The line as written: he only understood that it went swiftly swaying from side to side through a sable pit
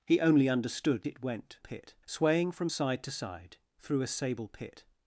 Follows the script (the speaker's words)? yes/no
no